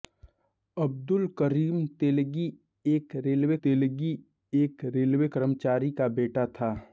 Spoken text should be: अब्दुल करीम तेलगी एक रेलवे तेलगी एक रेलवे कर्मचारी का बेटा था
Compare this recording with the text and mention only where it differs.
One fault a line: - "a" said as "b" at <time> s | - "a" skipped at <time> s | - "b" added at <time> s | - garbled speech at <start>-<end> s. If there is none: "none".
none